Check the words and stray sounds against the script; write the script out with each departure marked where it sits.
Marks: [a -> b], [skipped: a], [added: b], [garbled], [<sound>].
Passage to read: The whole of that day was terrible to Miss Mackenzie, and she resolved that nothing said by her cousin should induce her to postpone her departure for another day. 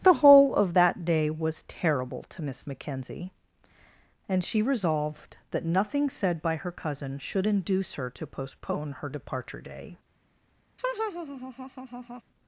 The whole of that day was terrible to Miss Mackenzie, and she resolved that nothing said by her cousin should induce her to postpone her departure [skipped: for another] day. [laugh]